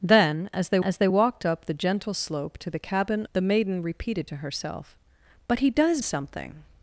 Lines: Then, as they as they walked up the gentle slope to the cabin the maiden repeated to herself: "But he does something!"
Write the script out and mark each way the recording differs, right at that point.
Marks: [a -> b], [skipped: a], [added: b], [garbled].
Then, as they as they walked up the gentle slope to the cabin the maiden repeated to herself: "But he does something!"